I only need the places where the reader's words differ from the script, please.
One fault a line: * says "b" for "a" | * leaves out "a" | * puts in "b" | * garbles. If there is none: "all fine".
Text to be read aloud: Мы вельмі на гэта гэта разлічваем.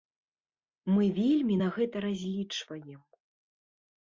* leaves out "гэта"